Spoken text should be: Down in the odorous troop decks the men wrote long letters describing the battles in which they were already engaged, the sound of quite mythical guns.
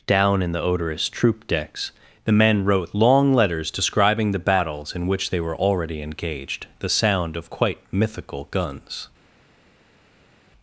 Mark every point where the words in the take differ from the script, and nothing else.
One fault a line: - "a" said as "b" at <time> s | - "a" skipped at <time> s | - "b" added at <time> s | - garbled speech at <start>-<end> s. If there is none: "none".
none